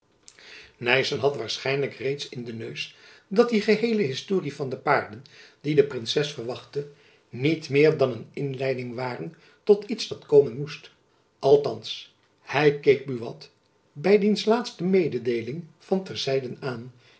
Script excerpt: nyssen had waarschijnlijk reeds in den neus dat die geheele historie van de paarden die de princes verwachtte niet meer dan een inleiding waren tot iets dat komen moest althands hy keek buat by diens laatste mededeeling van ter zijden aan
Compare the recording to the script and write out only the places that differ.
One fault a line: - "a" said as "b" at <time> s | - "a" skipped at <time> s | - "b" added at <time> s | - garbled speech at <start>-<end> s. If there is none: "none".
none